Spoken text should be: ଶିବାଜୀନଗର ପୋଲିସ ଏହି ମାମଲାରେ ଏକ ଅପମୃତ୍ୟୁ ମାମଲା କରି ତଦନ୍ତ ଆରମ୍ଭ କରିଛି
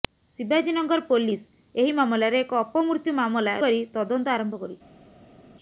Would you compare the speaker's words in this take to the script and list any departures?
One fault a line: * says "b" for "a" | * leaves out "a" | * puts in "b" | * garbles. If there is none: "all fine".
all fine